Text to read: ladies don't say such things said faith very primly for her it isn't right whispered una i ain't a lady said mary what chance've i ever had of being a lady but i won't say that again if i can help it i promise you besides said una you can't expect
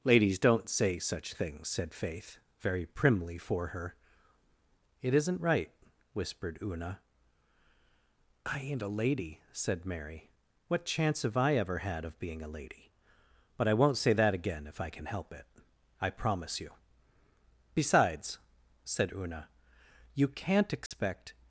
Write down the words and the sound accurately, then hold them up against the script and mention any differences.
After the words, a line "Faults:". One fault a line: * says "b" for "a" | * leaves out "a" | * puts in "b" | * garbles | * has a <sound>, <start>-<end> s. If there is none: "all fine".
ladies don't say such things said faith very primly for her it isn't right whispered una i ain't a lady said mary what chance've i ever had of being a lady but i won't say that again if i can help it i promise you besides said una you can't expect
Faults:
* has a dropout, 20.9-20.9 s